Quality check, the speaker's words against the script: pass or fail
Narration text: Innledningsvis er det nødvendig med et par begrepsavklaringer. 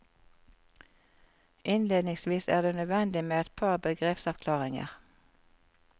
pass